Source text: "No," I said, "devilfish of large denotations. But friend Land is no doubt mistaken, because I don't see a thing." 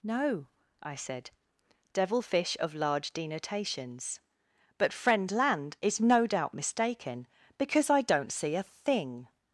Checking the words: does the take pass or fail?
pass